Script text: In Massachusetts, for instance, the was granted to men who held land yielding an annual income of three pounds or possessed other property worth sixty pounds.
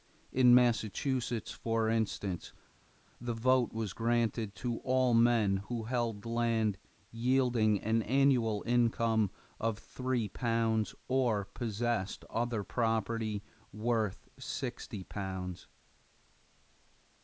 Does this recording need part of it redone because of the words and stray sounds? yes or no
yes